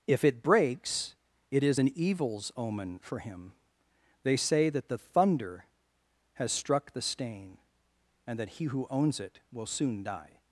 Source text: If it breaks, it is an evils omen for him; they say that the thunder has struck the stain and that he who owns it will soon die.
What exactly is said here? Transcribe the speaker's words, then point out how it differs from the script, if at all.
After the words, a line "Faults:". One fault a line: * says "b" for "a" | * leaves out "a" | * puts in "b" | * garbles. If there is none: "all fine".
If it breaks, it is an evils omen for him; they say that the thunder has struck the stain and that he who owns it will soon die.
Faults:
all fine